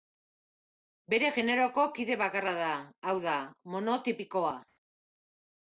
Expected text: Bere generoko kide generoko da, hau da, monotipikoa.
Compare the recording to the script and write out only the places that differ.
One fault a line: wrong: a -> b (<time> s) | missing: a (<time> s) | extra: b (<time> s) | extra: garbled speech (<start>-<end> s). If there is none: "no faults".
wrong: generoko -> bakarra (2.2 s)